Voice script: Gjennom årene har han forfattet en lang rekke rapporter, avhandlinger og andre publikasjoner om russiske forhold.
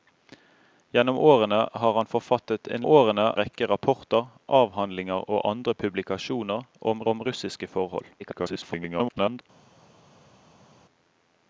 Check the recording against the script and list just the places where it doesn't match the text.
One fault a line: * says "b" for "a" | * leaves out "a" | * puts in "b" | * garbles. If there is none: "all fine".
* says "årene" for "lang"
* puts in "om"
* garbles